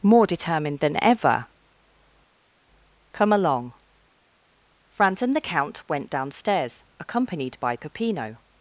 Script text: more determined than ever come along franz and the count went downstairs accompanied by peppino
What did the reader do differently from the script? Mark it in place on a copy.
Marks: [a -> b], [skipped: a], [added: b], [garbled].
more determined than ever come along franz and the count went downstairs accompanied by peppino